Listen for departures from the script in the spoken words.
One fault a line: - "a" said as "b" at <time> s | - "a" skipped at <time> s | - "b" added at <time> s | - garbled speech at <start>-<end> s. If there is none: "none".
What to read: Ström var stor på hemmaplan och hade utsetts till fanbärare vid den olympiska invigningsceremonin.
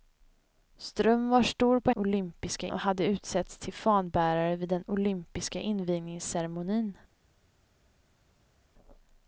- "hemmaplan" said as "olympiska" at 1.9 s